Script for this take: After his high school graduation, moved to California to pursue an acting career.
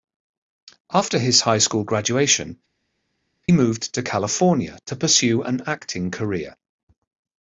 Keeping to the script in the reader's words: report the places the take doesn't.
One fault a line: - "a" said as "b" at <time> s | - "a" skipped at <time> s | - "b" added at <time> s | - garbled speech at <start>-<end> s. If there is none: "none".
none